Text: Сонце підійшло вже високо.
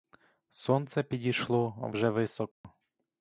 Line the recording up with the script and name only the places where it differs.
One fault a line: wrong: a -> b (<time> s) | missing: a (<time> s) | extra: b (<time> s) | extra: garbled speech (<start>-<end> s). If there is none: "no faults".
no faults